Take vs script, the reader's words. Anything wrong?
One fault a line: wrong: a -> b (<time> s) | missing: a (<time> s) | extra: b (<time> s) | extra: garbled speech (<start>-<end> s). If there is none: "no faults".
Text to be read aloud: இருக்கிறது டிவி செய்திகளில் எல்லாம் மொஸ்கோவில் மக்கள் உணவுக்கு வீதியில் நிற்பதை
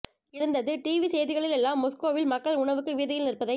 wrong: இருக்கிறது -> இருந்தது (0.3 s)